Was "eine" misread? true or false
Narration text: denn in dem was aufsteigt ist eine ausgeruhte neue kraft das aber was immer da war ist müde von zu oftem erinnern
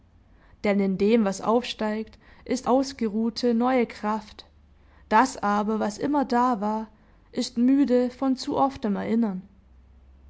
true